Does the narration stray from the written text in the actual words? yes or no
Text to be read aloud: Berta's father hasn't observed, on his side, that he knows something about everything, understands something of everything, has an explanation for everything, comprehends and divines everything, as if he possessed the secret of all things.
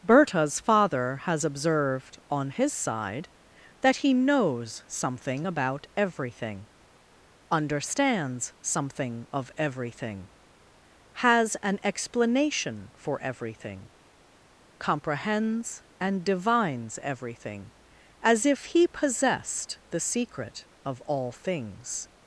yes